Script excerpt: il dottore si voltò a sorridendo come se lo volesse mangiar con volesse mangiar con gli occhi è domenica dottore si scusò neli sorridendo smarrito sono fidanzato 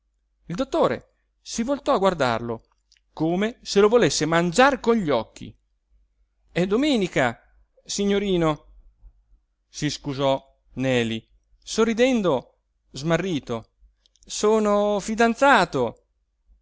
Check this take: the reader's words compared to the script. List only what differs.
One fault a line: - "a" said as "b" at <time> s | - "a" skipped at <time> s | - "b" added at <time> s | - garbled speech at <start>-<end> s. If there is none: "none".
- "sorridendo" said as "guardarlo" at 2.0 s
- "volesse mangiar con" skipped at 4.9 s
- "dottore" said as "signorino" at 7.8 s